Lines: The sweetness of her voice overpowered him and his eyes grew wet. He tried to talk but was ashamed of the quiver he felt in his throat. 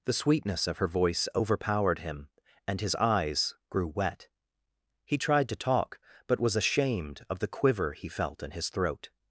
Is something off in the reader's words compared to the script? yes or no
no